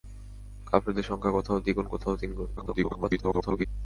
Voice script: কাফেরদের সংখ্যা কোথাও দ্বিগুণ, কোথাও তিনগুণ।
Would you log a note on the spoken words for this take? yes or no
yes